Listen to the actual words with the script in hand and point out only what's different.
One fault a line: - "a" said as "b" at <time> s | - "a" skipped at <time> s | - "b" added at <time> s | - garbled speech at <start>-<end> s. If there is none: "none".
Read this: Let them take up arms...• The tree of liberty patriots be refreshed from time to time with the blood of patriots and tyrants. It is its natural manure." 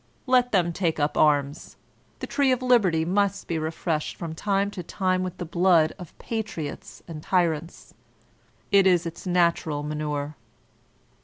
- "patriots" said as "must" at 3.0 s